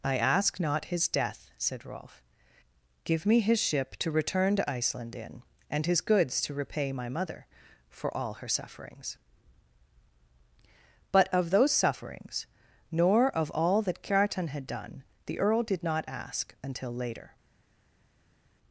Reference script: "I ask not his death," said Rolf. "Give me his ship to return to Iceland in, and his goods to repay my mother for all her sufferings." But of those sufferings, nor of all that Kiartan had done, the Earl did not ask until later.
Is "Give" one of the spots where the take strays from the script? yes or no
no